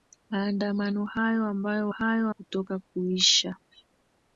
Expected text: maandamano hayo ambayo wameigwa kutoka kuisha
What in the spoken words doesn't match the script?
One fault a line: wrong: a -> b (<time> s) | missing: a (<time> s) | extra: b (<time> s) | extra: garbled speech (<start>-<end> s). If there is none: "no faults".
wrong: wameigwa -> hayo (1.9 s)